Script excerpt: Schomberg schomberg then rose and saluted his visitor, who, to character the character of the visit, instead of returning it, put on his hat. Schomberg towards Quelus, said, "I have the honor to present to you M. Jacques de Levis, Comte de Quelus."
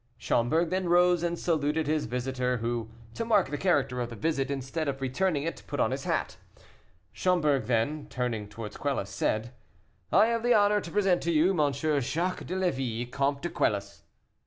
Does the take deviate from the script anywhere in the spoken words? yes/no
yes